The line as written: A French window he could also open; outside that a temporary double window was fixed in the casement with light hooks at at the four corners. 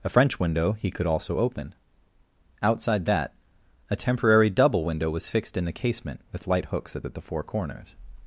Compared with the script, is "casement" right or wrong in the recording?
right